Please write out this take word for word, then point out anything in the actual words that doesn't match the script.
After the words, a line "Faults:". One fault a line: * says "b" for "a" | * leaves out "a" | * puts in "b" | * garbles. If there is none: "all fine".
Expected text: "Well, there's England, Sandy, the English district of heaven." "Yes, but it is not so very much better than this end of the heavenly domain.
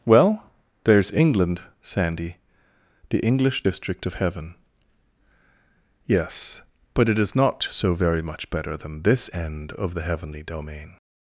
"Well, there's England, Sandy, the English district of heaven." "Yes, but it is not so very much better than this end of the heavenly domain.
Faults:
all fine